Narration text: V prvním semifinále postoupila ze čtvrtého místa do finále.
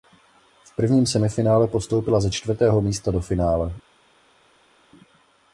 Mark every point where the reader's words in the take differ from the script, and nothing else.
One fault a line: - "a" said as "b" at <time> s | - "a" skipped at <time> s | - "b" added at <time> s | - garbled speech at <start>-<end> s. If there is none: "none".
none